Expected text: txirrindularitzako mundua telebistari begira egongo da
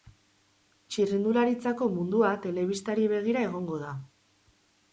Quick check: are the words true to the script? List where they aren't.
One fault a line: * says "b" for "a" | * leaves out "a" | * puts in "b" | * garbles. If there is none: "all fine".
all fine